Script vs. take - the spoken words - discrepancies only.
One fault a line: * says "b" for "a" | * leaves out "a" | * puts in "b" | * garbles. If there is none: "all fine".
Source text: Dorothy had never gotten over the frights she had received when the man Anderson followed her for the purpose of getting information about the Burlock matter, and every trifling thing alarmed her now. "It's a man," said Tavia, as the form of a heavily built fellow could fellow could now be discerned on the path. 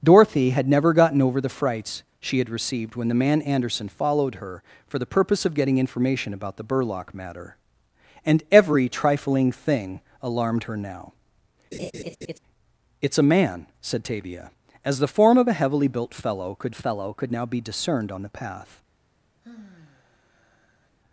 all fine